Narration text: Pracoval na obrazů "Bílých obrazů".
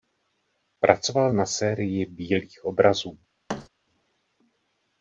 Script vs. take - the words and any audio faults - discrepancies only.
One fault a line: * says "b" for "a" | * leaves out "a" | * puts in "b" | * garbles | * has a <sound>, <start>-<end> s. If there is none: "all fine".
* says "sérii" for "obrazů"
* has a thud, 3.5-3.7 s